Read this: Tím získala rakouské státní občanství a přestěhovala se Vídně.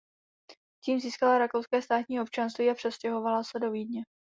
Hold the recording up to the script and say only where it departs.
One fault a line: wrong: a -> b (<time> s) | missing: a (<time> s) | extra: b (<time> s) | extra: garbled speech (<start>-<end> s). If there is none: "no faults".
extra: do (3.6 s)